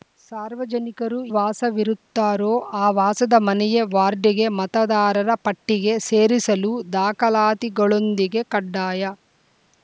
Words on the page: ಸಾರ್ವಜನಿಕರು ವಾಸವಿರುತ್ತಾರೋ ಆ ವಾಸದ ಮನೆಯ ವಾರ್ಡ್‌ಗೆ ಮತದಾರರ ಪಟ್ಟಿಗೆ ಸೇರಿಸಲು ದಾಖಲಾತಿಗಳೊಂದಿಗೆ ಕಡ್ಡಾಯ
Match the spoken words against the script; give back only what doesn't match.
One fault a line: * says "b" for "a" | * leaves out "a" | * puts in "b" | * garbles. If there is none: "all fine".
all fine